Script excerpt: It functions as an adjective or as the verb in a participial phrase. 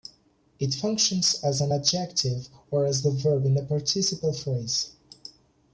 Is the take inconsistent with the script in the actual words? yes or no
no